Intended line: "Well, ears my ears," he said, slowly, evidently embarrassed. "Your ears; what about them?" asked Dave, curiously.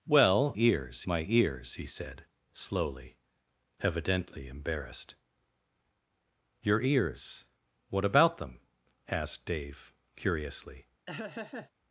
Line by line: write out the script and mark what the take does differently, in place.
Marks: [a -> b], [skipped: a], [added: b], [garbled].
"Well, ears my ears," he said, slowly, evidently embarrassed. "Your ears; what about them?" asked Dave, curiously.